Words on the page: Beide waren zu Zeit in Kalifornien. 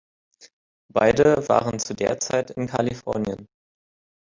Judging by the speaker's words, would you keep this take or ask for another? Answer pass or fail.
fail